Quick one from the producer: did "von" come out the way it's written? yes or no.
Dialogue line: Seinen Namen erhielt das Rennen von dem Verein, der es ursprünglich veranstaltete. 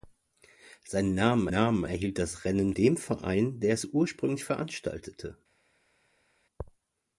no